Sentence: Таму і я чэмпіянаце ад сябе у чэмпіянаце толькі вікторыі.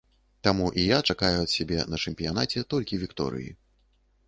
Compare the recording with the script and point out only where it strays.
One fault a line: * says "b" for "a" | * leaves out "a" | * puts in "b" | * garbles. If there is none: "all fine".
* says "чакаю" for "чэмпіянаце"
* says "на" for "у"